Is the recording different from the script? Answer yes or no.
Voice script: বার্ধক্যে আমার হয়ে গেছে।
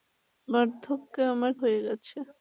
no